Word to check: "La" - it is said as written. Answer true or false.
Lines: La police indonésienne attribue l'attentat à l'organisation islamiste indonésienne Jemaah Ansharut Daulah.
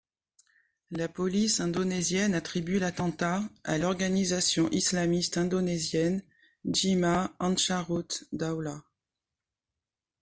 true